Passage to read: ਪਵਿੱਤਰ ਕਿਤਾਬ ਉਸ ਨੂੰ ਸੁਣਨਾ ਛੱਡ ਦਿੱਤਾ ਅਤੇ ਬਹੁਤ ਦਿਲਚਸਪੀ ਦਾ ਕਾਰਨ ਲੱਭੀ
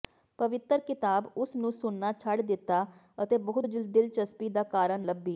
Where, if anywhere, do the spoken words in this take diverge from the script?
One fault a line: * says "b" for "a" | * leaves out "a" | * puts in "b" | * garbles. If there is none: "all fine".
all fine